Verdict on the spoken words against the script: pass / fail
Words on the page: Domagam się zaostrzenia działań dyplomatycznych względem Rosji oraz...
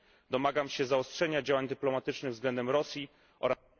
pass